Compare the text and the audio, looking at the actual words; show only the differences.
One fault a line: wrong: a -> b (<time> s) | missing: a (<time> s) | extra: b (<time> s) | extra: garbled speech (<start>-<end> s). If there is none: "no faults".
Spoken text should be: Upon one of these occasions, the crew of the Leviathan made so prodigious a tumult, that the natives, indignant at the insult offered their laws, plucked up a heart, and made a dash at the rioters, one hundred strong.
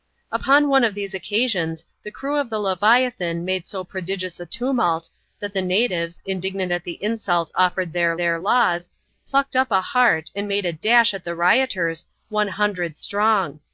extra: their (8.2 s)